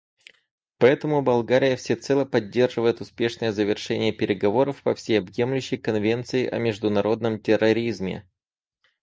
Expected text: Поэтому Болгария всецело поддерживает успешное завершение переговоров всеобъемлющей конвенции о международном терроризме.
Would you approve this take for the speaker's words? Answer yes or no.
no